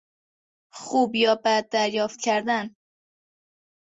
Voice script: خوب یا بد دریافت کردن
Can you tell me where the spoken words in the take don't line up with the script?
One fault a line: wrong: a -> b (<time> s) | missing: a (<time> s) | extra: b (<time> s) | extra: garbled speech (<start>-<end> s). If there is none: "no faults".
no faults